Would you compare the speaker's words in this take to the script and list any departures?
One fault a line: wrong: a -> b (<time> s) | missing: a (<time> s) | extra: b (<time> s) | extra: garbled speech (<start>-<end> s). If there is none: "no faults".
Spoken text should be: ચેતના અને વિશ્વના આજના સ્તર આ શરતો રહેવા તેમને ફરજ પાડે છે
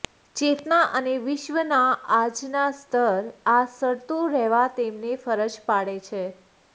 no faults